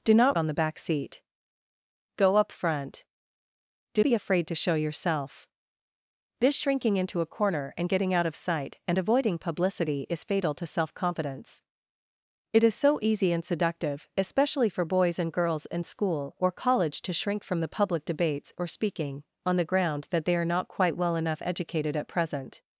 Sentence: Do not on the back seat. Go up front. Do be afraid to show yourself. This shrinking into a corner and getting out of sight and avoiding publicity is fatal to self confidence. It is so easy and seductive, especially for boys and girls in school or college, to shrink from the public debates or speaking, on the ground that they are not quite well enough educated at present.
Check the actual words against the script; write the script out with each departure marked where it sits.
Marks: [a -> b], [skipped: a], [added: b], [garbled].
Do not on the back seat. Go up front. Do be afraid to show yourself. This shrinking into a corner and getting out of sight and avoiding publicity is fatal to self confidence. It is so easy and seductive, especially for boys and girls in school or college, to shrink from the public debates or speaking, on the ground that they are not quite well enough educated at present.